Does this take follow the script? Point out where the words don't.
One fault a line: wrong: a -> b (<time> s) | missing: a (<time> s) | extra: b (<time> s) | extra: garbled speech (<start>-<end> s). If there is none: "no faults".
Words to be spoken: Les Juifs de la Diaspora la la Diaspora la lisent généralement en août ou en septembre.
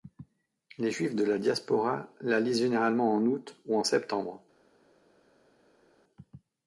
missing: la Diaspora la (2.4 s)